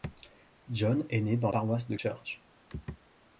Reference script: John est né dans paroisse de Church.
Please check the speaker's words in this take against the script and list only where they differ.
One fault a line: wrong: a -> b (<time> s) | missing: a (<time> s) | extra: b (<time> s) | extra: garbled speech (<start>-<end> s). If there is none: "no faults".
no faults